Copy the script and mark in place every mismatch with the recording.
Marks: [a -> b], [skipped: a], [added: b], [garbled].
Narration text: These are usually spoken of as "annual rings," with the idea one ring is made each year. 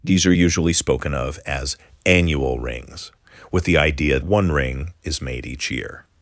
These are usually spoken of as "annual rings," with the idea one ring is made each year.